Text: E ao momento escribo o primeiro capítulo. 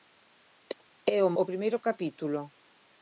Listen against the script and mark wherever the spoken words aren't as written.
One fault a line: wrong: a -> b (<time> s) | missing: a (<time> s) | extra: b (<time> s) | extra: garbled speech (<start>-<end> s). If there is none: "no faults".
missing: momento escribo (1.3 s)